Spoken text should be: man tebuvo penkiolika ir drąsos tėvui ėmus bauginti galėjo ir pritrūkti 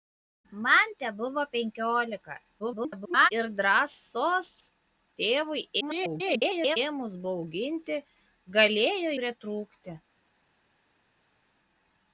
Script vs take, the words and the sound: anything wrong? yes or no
yes